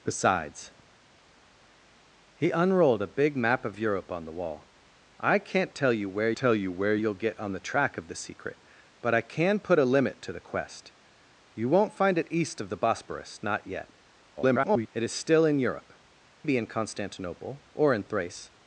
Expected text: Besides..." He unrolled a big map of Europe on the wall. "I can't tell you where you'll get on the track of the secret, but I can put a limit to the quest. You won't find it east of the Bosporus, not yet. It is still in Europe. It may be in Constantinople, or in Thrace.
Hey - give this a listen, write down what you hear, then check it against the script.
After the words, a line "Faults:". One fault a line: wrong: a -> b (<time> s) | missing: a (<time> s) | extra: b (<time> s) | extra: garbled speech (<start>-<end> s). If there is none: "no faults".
Besides..." He unrolled a big map of Europe on the wall. "I can't tell you where tell you where you'll get on the track of the secret, but I can put a limit to the quest. You won't find it east of the Bosporus, not yet. [garbled] It is still in Europe. Be in Constantinople, or in Thrace.
Faults:
extra: tell you where (6.4 s)
extra: garbled speech (14.4-14.9 s)
missing: It may (15.9 s)